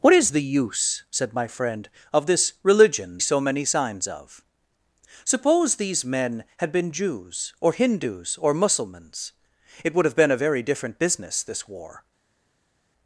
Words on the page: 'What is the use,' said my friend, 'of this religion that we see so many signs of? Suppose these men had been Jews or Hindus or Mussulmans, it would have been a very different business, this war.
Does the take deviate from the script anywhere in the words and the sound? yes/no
yes